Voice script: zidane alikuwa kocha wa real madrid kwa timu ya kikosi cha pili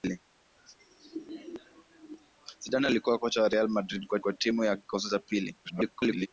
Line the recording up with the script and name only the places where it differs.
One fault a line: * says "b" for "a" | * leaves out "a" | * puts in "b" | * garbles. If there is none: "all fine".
* puts in "kwa"
* garbles